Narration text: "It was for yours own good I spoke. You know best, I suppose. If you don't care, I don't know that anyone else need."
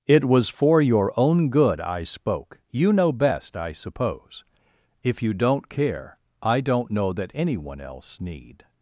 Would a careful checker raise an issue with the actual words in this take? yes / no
yes